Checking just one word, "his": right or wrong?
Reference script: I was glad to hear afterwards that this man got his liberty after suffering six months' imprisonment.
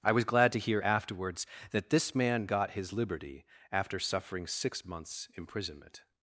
right